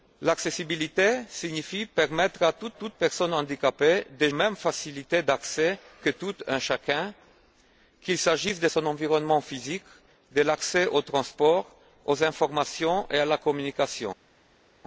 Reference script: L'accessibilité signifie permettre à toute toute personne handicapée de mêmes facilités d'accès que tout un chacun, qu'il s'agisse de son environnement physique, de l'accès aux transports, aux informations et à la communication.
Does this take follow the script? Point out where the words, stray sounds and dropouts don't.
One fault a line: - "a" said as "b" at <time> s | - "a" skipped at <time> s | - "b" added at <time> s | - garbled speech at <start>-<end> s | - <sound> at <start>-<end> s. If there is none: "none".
none